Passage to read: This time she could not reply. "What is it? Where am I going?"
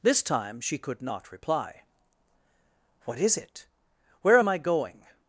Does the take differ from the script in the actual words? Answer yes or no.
no